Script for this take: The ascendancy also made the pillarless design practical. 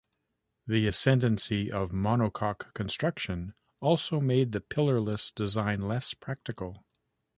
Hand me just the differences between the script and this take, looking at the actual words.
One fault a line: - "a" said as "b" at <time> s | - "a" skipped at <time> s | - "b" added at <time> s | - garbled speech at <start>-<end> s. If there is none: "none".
- "of monocoque construction" added at 1.7 s
- "less" added at 5.8 s